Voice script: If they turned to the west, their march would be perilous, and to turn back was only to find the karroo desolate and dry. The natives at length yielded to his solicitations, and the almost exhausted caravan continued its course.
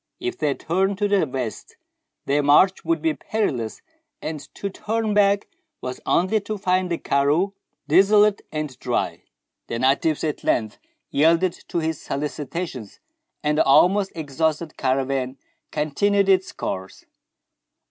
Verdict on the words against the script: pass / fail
pass